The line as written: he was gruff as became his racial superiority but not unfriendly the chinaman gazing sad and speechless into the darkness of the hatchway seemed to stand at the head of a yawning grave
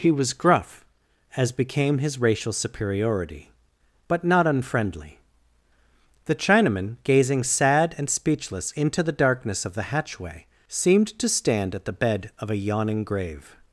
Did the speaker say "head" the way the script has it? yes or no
no